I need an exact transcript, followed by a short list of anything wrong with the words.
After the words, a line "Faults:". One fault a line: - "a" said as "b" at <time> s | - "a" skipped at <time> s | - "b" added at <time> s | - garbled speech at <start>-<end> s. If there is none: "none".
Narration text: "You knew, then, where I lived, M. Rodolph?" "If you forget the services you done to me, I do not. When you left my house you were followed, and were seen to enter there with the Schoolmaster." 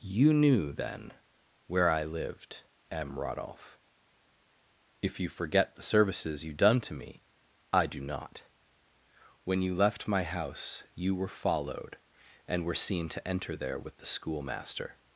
"You knew, then, where I lived, M. Rodolph?" "If you forget the services you done to me, I do not. When you left my house you were followed, and were seen to enter there with the Schoolmaster."
Faults:
none